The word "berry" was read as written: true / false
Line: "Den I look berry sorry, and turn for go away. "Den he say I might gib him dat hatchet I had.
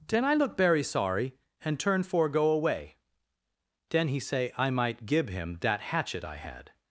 false